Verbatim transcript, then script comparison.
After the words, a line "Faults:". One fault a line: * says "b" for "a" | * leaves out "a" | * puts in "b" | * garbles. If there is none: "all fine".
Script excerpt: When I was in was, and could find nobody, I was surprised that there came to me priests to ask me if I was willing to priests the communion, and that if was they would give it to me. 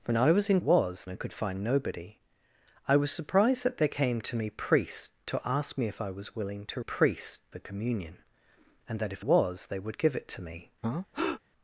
When I was in was, and could find nobody, I was surprised that there came to me priests to ask me if I was willing to priests the communion, and that if was they would give it to me.
Faults:
all fine